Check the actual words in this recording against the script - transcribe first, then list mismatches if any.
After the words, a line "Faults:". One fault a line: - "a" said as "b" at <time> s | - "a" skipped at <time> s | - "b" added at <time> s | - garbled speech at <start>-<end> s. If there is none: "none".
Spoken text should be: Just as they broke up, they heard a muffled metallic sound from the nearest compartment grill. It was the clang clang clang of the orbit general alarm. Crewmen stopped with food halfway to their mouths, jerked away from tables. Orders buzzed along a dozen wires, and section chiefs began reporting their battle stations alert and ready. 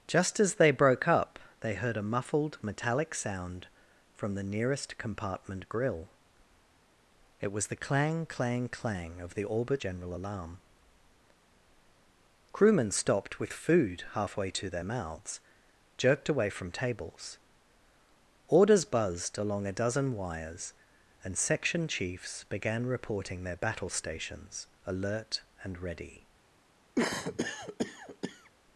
Just as they broke up, they heard a muffled metallic sound from the nearest compartment grill. It was the clang clang clang of the orbit general alarm. Crewmen stopped with food halfway to their mouths, jerked away from tables. Orders buzzed along a dozen wires, and section chiefs began reporting their battle stations alert and ready.
Faults:
none